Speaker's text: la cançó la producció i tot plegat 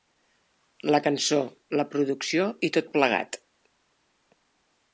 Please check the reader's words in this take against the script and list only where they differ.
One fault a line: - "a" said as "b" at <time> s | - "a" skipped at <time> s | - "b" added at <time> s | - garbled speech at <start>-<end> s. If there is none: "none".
none